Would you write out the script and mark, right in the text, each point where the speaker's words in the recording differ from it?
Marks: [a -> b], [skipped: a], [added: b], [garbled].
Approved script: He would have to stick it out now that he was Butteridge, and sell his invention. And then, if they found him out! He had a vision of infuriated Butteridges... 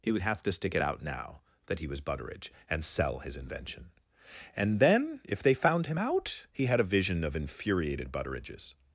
He would have to stick it out now that he was Butteridge, and sell his invention. And then, if they found him out! He had a vision of infuriated Butteridges...